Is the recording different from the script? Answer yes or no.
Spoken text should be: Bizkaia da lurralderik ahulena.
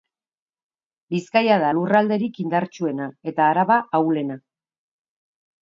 yes